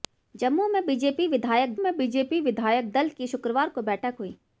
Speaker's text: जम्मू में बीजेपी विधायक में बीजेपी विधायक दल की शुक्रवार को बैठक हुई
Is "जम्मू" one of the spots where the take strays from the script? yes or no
no